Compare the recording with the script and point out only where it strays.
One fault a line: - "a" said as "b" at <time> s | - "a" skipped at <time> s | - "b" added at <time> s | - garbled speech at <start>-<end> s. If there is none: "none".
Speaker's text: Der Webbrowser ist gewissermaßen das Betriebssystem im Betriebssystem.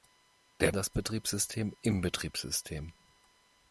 - "Webbrowser ist gewissermaßen" skipped at 0.8 s